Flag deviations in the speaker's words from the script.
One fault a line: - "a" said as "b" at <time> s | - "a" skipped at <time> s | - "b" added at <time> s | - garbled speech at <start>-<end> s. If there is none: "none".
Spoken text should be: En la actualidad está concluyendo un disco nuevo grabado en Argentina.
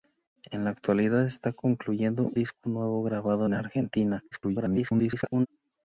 - "un" skipped at 2.3 s
- garbled speech at 4.3-5.5 s